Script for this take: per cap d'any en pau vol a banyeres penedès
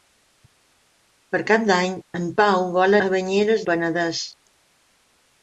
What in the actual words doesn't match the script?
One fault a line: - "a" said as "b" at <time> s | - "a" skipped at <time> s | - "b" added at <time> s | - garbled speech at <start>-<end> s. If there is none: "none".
none